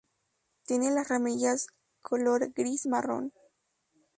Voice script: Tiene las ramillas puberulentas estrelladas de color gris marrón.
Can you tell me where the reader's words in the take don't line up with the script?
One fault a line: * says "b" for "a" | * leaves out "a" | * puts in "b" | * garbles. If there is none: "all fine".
* leaves out "puberulentas estrelladas de"